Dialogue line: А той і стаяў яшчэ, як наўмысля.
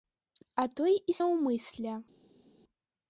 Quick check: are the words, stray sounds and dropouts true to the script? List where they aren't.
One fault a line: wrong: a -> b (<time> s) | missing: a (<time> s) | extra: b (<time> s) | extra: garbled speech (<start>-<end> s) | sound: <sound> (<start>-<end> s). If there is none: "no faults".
missing: стаяў яшчэ як (1.1 s)